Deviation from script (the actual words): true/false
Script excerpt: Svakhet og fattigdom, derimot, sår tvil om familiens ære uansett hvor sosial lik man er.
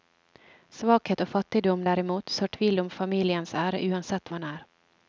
true